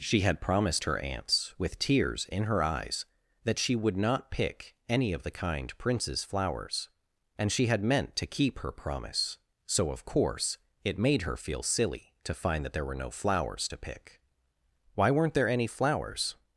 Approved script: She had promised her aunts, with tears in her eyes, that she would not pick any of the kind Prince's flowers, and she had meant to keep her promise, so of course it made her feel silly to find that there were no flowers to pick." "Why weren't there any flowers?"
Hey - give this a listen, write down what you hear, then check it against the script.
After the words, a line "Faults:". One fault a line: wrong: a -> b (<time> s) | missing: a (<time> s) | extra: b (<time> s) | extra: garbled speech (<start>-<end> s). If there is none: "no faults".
She had promised her aunts, with tears in her eyes, that she would not pick any of the kind Prince's flowers, and she had meant to keep her promise, so of course it made her feel silly to find that there were no flowers to pick." "Why weren't there any flowers?"
Faults:
no faults